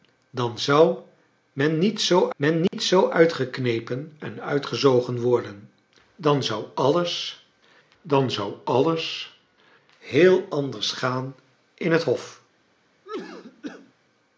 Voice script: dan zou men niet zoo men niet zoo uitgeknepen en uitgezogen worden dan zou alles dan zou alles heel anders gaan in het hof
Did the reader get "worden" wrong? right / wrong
right